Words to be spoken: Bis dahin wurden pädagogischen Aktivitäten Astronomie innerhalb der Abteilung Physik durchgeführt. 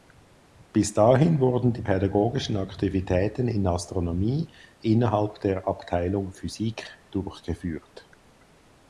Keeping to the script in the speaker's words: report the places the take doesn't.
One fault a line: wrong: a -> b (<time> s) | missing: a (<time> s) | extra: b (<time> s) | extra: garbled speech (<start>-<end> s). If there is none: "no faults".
extra: die (1.7 s)
extra: in (3.5 s)